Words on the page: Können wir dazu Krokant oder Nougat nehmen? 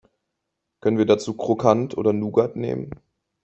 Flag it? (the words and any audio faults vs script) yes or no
no